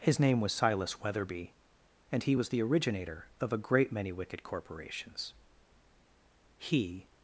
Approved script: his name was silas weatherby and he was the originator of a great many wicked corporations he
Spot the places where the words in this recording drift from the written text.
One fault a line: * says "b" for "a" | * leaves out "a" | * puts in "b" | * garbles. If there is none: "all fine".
all fine